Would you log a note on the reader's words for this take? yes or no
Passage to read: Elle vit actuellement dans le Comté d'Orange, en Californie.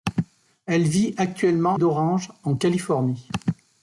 yes